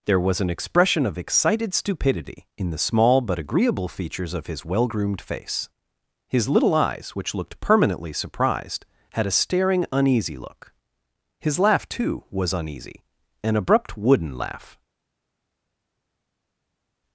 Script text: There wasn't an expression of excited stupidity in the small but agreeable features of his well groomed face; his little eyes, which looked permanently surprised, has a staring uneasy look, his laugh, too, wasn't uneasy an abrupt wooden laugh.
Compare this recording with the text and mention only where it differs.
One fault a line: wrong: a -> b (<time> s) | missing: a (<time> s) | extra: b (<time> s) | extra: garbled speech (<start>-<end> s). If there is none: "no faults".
wrong: wasn't -> was (0.2 s)
wrong: has -> had (9.1 s)
wrong: wasn't -> was (12.3 s)